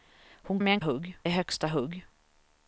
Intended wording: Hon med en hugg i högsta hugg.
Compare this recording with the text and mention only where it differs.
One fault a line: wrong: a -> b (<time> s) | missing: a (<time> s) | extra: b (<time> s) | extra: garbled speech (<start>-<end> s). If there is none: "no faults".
no faults